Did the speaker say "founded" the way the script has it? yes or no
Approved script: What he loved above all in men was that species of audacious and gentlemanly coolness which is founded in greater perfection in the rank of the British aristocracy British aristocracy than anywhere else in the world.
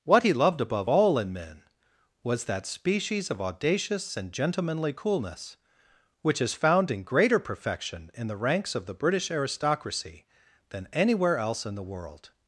no